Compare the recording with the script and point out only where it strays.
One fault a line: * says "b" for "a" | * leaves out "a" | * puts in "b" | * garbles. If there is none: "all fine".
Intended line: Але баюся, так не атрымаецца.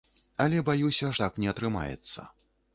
all fine